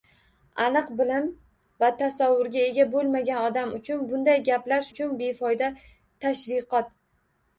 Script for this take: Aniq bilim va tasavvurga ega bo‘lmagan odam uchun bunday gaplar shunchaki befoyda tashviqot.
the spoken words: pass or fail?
fail